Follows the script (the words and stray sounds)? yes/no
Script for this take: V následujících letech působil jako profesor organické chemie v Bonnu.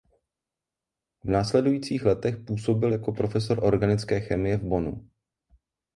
yes